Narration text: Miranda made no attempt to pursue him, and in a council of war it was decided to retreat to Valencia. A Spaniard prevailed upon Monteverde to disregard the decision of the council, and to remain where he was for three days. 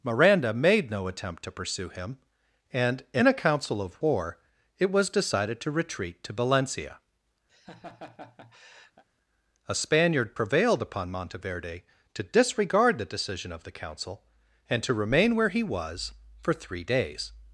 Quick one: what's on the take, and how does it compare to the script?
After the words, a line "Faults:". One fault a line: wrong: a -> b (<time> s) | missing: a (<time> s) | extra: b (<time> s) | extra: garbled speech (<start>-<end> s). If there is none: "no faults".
Miranda made no attempt to pursue him, and in a council of war it was decided to retreat to Valencia. A Spaniard prevailed upon Monteverde to disregard the decision of the council, and to remain where he was for three days.
Faults:
no faults